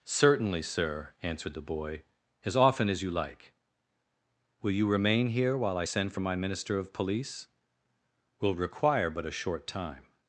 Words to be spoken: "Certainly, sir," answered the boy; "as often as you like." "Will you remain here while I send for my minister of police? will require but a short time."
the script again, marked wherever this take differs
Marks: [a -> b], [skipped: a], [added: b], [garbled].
"Certainly, sir," answered the boy; "as often as you like." "Will you remain here while I send for my minister of police? will require but a short time."